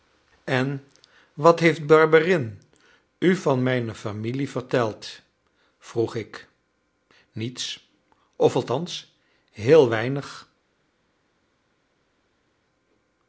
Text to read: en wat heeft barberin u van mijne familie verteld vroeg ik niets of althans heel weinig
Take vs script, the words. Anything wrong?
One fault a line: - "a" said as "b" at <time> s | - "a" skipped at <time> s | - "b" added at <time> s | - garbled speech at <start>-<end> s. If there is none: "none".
none